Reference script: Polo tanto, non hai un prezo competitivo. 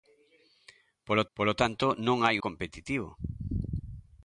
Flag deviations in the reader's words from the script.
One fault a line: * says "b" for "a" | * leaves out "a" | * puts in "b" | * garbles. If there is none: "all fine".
* puts in "polo"
* leaves out "un prezo"